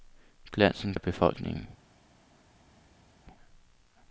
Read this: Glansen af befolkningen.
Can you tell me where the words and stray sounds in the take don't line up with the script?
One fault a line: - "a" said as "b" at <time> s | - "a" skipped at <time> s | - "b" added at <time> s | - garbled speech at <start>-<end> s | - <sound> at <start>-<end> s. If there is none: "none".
none